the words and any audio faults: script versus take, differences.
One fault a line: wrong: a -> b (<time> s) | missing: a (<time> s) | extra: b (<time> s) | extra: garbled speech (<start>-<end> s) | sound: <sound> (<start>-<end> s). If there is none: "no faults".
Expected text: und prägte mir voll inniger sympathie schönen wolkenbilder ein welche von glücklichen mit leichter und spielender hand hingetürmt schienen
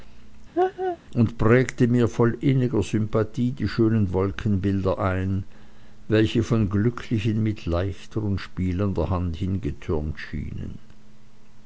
sound: laugh (0.5-1.0 s)
extra: die (3.5 s)